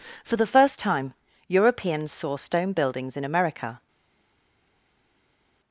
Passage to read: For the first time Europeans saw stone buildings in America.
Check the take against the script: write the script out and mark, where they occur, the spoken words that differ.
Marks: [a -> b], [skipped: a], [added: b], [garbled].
For the first time Europeans saw stone buildings in America.